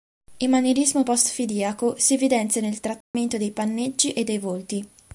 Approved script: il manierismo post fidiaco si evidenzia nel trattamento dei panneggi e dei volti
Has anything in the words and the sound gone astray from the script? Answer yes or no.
yes